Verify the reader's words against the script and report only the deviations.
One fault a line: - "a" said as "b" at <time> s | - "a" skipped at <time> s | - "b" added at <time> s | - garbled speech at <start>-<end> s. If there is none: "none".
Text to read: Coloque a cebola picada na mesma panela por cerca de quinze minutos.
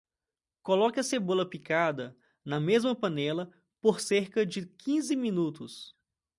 none